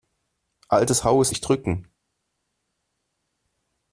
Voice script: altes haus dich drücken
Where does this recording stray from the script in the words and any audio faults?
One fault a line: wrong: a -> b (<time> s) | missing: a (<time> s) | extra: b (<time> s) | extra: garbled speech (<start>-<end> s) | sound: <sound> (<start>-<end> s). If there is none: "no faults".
no faults